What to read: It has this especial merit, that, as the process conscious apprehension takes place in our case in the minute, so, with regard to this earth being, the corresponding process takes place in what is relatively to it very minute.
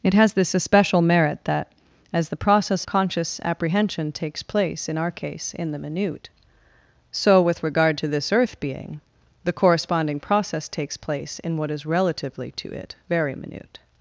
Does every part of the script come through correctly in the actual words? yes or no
yes